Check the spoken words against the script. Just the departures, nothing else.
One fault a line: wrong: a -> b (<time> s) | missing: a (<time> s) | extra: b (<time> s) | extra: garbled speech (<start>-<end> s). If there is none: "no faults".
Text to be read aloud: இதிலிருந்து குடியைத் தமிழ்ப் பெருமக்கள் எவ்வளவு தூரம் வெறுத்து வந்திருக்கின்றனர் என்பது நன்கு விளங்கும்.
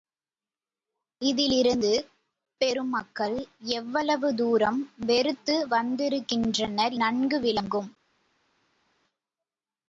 missing: குடியைத் தமிழ்ப் (1.9 s)
missing: என்பது (7.0 s)